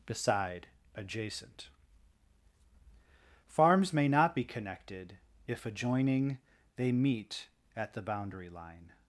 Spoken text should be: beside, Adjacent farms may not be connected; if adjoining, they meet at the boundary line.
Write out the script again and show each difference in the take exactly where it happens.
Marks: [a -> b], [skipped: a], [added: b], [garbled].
beside, Adjacent farms may not be connected; if adjoining, they meet at the boundary line.